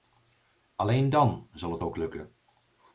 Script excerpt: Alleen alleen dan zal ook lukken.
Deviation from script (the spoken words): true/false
true